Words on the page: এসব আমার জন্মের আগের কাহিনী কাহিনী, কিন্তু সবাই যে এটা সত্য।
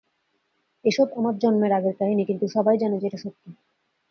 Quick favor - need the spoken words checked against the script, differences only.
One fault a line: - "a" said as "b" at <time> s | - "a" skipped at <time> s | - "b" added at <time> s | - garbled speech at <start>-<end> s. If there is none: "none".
- "কাহিনী" skipped at 2.2 s
- "জানে" added at 2.8 s